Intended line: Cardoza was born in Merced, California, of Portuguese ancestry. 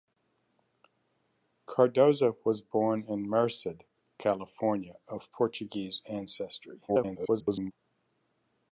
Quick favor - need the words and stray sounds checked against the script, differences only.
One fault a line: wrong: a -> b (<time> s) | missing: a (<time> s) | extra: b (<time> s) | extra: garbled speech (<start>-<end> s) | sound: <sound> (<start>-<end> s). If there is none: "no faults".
extra: garbled speech (6.9-7.7 s)